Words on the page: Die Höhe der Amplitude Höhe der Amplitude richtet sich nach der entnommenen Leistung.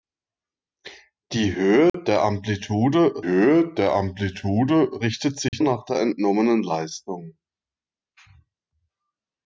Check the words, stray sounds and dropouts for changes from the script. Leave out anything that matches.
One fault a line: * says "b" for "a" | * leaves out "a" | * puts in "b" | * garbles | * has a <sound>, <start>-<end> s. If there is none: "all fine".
* has a dropout, 1.9-1.9 s
* has a dropout, 5.5-5.5 s